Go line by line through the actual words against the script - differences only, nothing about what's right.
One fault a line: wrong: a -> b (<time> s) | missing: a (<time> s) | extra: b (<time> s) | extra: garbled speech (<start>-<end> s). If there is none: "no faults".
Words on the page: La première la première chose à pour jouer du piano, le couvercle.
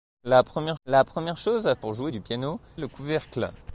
no faults